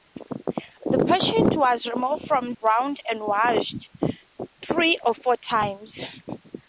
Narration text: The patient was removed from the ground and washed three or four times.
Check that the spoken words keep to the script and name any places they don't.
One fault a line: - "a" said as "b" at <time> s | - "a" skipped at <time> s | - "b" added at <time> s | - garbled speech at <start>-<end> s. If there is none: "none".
- "the" skipped at 2.5 s